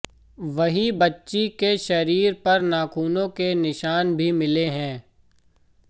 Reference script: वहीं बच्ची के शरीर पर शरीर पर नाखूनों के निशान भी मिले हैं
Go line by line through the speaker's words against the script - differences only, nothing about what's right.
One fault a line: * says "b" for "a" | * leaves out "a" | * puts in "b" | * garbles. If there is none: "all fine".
* leaves out "शरीर पर"